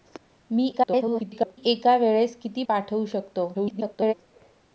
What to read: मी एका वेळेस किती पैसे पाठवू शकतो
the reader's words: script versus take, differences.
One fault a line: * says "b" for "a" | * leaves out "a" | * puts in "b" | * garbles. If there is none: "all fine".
* garbles
* leaves out "पैसे"
* garbles